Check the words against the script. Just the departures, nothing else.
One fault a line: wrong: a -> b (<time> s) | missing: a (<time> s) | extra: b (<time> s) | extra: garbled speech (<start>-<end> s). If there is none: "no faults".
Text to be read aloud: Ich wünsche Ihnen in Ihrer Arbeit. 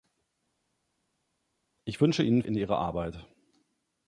no faults